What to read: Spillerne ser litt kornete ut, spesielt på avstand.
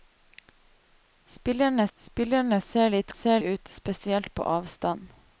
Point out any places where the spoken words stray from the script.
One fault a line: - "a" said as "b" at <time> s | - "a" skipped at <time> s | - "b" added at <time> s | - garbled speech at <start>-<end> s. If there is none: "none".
- "spillerne" added at 2.0 s
- "kornete" said as "ser" at 3.1 s